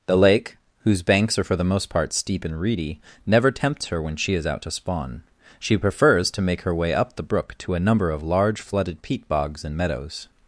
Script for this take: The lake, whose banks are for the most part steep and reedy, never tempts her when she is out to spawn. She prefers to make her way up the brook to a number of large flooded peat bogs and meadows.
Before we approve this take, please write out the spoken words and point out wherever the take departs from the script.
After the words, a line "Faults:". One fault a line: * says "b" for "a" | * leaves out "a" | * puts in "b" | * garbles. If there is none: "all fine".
The lake, whose banks are for the most part steep and reedy, never tempts her when she is out to spawn. She prefers to make her way up the brook to a number of large flooded peat bogs and meadows.
Faults:
all fine